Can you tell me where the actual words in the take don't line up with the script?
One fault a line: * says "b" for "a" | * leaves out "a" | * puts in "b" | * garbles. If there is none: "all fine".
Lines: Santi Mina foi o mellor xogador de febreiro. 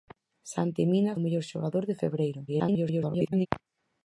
* leaves out "foi"
* garbles